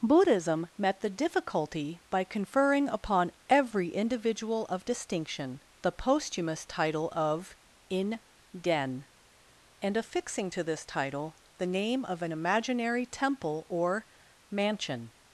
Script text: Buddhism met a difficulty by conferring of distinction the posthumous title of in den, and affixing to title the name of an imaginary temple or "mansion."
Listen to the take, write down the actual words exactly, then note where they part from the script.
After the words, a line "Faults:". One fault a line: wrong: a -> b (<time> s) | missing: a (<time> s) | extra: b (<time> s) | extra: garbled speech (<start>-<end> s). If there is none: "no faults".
Buddhism met the difficulty by conferring upon every individual of distinction the posthumous title of in den, and affixing to this title the name of an imaginary temple or "mansion."
Faults:
wrong: a -> the (1.0 s)
extra: upon every individual (2.9 s)
extra: this (10.6 s)